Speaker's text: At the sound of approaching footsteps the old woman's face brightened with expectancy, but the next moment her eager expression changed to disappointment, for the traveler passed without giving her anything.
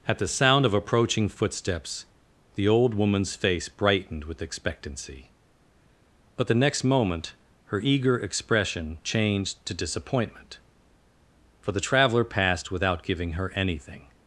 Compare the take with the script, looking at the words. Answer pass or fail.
pass